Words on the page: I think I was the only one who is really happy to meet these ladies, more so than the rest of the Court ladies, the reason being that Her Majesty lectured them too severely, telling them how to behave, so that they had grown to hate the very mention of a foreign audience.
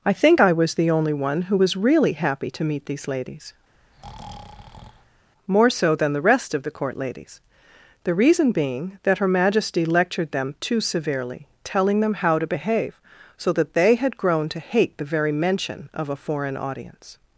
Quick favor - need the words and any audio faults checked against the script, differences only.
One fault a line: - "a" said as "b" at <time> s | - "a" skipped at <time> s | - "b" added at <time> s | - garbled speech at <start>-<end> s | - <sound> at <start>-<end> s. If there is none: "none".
- "is" said as "was" at 1.5 s
- breath at 3.7-5.3 s